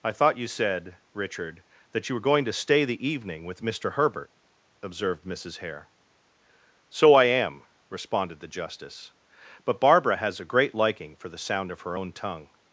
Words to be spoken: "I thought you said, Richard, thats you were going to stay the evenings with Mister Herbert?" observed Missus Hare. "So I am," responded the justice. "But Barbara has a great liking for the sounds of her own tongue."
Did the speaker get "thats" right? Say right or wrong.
wrong